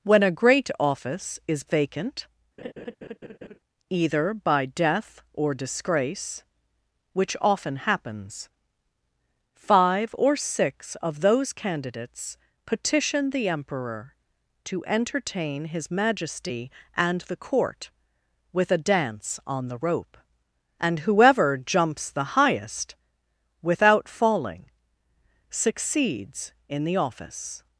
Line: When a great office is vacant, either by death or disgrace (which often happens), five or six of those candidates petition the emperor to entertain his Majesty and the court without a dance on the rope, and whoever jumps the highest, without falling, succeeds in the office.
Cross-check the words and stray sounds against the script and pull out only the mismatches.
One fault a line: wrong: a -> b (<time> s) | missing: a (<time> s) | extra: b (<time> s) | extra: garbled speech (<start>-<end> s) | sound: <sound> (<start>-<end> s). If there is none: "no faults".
sound: laugh (2.6-3.6 s)
wrong: without -> with (18.5 s)